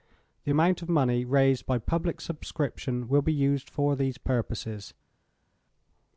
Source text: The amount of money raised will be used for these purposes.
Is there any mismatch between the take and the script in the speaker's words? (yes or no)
yes